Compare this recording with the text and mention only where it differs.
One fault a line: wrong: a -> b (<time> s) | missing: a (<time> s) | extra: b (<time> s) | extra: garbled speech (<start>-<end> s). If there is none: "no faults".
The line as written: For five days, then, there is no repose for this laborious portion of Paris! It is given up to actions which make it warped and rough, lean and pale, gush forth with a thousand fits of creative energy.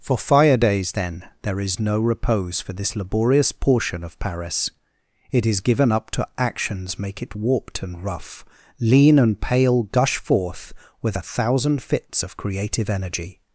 wrong: five -> fire (0.2 s)
missing: which (7.0 s)